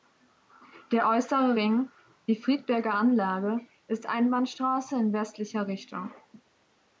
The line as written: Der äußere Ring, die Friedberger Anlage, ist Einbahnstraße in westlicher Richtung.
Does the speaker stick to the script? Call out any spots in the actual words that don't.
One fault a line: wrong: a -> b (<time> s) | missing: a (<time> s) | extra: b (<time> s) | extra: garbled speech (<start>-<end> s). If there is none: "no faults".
no faults